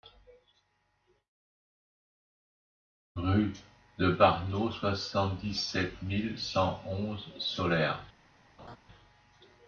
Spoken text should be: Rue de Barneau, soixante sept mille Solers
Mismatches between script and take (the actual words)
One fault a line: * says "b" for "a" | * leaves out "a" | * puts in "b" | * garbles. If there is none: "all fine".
* puts in "dix"
* puts in "cent onze"